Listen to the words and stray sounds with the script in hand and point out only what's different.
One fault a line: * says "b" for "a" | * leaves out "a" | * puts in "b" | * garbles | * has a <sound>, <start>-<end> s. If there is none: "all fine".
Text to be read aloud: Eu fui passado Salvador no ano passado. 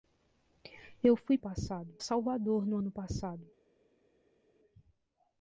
all fine